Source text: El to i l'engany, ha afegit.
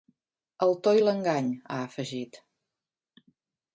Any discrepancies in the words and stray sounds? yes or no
no